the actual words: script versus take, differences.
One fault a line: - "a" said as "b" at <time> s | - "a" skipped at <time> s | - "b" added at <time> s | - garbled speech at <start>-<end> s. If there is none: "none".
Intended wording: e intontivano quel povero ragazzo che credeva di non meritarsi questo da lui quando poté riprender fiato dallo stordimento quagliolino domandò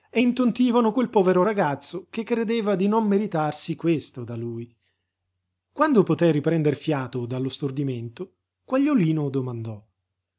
none